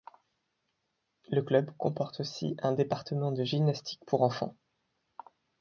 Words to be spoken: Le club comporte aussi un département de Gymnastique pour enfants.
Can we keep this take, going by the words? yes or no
yes